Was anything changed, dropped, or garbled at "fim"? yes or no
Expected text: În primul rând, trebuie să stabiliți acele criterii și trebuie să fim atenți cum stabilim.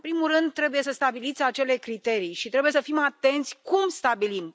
no